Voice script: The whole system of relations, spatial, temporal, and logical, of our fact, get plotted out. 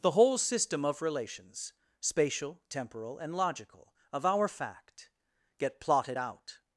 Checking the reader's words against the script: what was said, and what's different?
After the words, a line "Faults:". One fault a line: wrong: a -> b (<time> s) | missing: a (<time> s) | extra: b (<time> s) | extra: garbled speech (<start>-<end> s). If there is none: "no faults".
The whole system of relations, spatial, temporal, and logical, of our fact, get plotted out.
Faults:
no faults